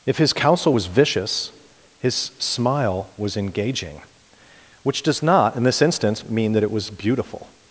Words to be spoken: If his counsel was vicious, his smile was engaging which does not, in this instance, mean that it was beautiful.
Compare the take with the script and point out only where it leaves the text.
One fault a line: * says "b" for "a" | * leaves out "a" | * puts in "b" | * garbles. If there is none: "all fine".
all fine